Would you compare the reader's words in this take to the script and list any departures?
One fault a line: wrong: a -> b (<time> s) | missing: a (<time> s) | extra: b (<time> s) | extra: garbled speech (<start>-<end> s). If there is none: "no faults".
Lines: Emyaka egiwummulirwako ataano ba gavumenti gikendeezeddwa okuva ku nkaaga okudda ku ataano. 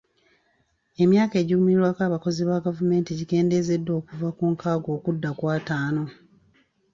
wrong: ataano -> abakozi (2.1 s)